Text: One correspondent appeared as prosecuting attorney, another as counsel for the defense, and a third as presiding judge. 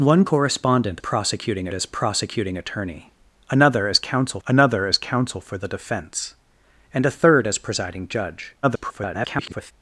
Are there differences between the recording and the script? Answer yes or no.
yes